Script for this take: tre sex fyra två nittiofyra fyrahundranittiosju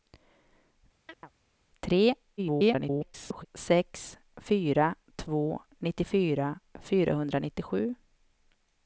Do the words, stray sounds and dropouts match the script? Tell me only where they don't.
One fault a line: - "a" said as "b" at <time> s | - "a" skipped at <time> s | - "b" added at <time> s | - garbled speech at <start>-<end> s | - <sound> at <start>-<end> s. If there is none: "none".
- chirp at 1.1-1.3 s
- garbled speech at 2.4-3.5 s